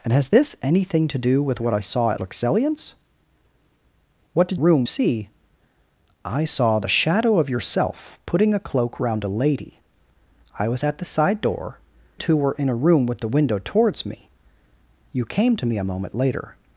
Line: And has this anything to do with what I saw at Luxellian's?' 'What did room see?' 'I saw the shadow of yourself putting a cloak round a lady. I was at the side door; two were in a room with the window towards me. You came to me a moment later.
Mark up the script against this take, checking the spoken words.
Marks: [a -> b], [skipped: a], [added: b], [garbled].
And has this anything to do with what I saw at Luxellian's?' 'What did room see?' 'I saw the shadow of yourself putting a cloak round a lady. I was at the side door; two were in a room with the window towards me. You came to me a moment later.